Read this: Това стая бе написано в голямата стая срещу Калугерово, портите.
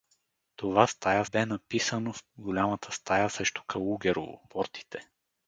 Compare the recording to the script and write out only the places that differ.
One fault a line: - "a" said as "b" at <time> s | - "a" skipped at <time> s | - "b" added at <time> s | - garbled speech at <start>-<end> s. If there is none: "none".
none